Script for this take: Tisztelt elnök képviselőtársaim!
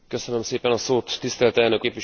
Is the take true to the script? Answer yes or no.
yes